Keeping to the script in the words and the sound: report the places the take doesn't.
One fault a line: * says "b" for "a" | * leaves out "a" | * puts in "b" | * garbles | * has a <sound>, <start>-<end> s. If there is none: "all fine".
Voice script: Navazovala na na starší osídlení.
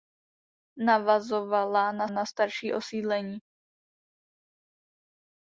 all fine